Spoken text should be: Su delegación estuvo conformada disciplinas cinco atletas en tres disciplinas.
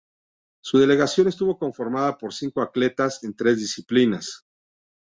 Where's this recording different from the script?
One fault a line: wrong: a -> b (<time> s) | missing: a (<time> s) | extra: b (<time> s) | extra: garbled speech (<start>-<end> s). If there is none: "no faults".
wrong: disciplinas -> por (2.2 s)